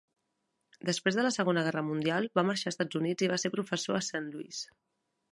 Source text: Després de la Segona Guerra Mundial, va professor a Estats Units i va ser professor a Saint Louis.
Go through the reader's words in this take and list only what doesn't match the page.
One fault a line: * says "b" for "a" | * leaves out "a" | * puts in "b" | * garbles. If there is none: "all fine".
* says "marxar" for "professor"